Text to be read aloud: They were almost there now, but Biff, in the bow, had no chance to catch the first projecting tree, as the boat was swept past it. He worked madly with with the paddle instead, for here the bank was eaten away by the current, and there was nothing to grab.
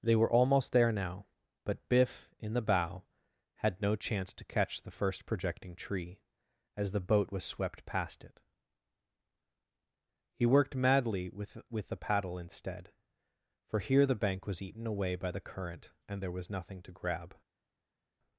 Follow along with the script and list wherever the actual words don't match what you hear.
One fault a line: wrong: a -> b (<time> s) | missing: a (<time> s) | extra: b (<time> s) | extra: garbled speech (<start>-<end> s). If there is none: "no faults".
no faults